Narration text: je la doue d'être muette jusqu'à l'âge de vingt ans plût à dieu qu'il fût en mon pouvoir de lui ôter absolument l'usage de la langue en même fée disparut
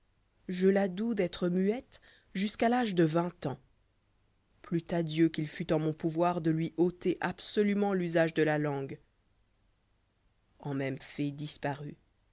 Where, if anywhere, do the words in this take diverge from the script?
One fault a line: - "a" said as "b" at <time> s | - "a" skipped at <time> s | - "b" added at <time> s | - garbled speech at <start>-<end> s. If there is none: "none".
none